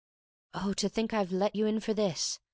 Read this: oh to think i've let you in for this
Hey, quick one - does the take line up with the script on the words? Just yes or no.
yes